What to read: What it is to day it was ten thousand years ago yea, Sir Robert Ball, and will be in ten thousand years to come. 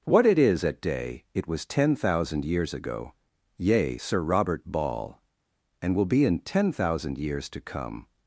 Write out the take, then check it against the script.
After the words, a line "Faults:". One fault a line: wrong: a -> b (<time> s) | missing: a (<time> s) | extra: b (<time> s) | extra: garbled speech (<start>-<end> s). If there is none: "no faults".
What it is at day it was ten thousand years ago yea, Sir Robert Ball, and will be in ten thousand years to come.
Faults:
wrong: to -> at (0.6 s)